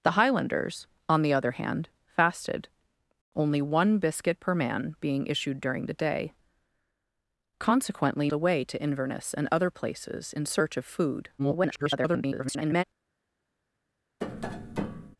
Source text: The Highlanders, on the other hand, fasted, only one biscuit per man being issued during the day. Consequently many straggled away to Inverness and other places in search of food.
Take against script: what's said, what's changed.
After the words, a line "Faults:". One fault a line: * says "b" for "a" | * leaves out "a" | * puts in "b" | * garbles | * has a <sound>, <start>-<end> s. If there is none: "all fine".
The Highlanders, on the other hand, fasted, only one biscuit per man being issued during the day. Consequently away to Inverness and other places in search of food. [garbled]
Faults:
* leaves out "many straggled"
* garbles
* has a tap, 14.2-15.2 s